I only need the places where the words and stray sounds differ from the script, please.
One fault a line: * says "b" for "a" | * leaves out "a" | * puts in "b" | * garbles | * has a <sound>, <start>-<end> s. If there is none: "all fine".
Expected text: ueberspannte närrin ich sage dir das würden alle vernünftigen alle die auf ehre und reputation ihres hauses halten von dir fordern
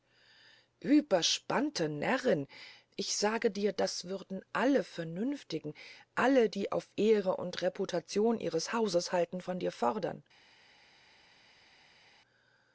all fine